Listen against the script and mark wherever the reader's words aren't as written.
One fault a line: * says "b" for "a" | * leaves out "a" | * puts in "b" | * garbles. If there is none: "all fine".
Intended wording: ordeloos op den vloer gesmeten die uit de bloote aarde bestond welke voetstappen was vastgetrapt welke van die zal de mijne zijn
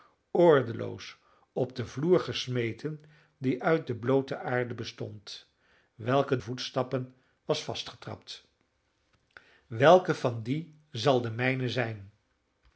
all fine